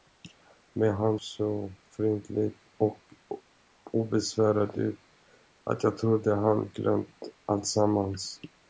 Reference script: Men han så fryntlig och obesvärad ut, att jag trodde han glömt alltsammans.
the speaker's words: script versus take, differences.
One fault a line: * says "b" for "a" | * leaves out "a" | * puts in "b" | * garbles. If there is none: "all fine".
all fine